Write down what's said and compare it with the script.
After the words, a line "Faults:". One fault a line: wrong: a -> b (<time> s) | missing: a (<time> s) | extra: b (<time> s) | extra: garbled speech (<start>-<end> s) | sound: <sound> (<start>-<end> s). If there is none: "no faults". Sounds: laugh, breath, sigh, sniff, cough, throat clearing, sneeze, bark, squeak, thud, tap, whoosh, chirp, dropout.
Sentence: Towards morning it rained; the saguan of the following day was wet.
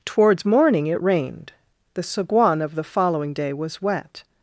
Towards morning it rained; the saguan of the following day was wet.
Faults:
no faults